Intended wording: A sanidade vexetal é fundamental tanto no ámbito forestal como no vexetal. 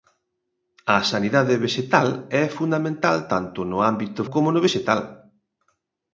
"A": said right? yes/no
yes